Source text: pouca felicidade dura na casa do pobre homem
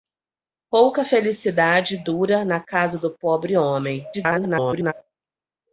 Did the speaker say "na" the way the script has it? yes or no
yes